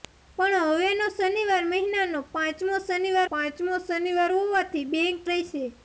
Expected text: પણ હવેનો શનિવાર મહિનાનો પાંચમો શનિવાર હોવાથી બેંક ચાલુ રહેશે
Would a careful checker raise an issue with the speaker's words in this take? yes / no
yes